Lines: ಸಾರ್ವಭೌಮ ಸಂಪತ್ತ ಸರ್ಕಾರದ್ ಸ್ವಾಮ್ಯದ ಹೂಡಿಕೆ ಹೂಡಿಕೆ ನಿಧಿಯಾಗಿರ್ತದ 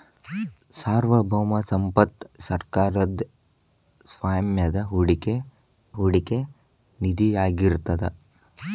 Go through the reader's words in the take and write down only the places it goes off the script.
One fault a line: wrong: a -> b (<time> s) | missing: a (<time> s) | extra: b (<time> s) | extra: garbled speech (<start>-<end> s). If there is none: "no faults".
no faults